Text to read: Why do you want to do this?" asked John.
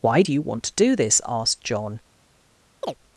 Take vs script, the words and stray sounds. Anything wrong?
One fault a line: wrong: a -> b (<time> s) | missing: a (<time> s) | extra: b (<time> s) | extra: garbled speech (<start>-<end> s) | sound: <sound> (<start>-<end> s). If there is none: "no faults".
sound: chirp (2.8-2.9 s)